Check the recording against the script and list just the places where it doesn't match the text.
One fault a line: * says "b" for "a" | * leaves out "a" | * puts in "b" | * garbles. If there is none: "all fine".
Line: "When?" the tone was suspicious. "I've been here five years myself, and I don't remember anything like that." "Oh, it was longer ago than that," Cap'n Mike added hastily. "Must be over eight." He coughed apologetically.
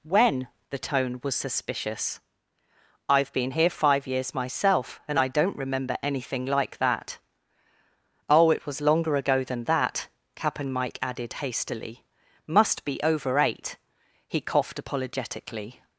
all fine